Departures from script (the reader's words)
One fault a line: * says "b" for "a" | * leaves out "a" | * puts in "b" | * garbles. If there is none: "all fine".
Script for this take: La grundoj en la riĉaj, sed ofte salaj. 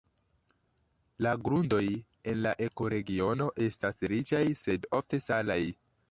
* puts in "ekoregiono estas"